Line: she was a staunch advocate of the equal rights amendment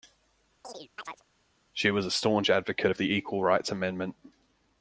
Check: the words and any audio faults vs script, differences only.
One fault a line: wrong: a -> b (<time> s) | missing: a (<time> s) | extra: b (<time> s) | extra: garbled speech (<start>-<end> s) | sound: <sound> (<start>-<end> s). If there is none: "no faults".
sound: chirp (0.6-1.2 s)